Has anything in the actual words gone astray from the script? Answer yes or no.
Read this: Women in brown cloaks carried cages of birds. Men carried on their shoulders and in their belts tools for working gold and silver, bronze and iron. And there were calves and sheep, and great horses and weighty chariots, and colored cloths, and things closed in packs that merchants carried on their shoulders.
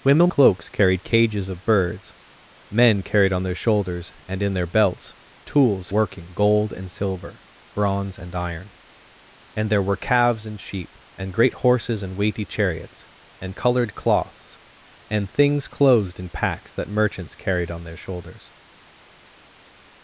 yes